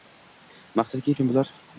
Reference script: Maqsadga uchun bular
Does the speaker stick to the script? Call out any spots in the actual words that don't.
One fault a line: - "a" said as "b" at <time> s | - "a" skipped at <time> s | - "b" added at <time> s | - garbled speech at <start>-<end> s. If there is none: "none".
none